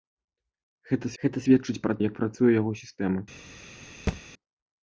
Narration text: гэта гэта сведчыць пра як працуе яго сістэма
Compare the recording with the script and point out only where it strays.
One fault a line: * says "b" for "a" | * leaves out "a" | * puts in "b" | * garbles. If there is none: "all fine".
all fine